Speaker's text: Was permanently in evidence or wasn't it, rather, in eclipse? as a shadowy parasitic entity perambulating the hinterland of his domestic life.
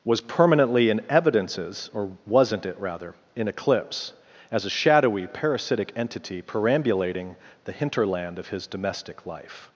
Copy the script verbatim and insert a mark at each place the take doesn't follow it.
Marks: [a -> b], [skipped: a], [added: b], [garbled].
Was permanently in [evidence -> evidences] or wasn't it, rather, in eclipse? as a shadowy parasitic entity perambulating the hinterland of his domestic life.